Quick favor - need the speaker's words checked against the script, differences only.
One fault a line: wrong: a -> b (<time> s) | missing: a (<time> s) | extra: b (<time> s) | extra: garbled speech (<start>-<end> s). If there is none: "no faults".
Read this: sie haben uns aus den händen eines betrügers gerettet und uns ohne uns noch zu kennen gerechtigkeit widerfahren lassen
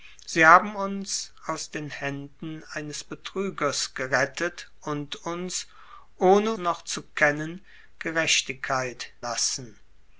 missing: uns (6.5 s)
missing: widerfahren (9.1 s)